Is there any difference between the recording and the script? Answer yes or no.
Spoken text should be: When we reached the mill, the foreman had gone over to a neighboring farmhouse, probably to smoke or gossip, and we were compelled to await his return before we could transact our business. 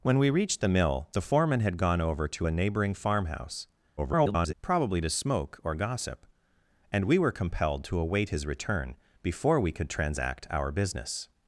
yes